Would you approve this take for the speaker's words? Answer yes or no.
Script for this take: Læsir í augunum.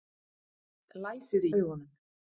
yes